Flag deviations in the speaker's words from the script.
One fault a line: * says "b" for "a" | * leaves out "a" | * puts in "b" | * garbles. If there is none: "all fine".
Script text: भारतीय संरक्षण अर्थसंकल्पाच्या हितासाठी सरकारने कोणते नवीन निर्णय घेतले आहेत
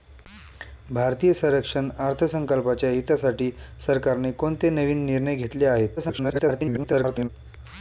* garbles